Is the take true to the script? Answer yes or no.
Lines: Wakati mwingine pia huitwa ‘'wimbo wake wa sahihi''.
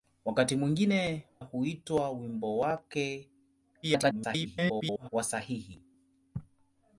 no